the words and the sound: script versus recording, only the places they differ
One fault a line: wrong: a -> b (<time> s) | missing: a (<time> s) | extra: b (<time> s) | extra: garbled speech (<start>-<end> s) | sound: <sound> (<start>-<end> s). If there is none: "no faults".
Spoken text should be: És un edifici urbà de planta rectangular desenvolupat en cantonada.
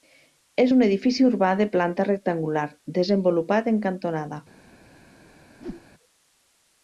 sound: whoosh (5.6-5.9 s)